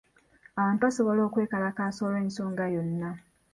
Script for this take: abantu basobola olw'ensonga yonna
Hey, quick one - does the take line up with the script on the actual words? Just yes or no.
no